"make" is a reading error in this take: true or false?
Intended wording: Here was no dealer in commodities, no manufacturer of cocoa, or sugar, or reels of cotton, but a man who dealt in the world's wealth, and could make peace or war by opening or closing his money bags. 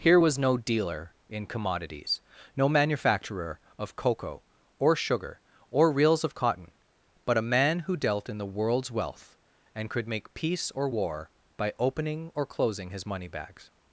false